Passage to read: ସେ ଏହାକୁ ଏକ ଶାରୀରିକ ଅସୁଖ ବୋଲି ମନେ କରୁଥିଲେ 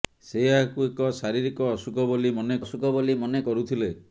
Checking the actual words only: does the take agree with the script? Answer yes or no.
no